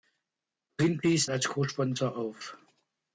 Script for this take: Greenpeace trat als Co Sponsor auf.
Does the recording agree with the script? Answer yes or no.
no